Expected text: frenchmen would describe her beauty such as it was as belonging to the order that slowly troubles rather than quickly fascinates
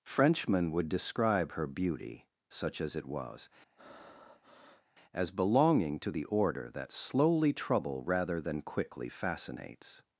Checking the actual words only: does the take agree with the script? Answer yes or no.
no